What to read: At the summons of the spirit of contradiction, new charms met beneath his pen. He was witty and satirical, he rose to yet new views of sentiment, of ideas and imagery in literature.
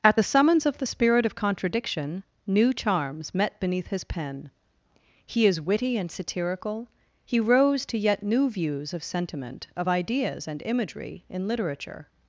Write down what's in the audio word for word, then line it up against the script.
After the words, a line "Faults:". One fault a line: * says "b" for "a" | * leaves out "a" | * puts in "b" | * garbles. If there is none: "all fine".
At the summons of the spirit of contradiction, new charms met beneath his pen. He is witty and satirical, he rose to yet new views of sentiment, of ideas and imagery in literature.
Faults:
* says "is" for "was"